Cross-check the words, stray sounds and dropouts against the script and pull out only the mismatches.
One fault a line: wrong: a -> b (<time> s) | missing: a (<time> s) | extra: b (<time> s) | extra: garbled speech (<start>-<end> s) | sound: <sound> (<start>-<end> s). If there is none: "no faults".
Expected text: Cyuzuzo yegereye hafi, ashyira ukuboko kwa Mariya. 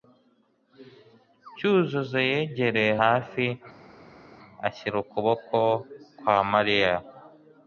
no faults